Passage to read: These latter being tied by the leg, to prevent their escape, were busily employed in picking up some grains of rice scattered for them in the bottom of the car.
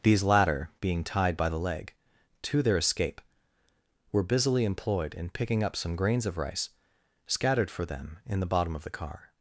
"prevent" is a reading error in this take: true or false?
true